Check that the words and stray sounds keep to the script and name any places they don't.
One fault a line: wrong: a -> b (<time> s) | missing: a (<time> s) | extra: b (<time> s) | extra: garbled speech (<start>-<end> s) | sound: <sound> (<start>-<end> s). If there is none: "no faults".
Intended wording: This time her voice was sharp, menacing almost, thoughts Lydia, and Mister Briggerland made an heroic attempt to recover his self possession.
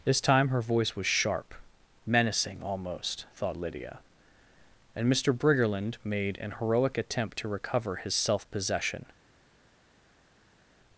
wrong: thoughts -> thought (3.4 s)